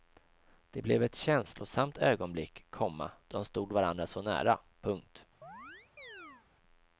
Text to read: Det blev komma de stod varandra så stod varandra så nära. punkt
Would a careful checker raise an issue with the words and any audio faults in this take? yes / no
yes